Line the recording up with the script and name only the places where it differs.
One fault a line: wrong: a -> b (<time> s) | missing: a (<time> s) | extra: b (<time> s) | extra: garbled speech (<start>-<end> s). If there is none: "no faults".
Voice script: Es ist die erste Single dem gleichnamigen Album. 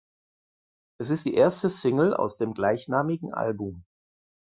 extra: aus (2.1 s)